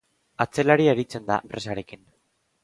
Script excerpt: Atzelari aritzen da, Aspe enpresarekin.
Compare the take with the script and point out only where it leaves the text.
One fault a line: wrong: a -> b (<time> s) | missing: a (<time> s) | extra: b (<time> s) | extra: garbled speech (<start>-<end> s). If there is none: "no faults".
missing: Aspe (1.4 s)